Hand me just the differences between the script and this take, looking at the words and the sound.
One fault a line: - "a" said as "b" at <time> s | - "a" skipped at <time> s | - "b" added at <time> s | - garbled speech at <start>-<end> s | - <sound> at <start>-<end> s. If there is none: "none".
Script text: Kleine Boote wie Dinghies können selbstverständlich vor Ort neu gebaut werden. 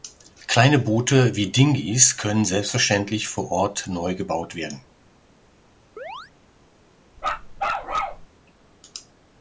- chirp at 6.0-6.3 s
- bark at 7.2-8.3 s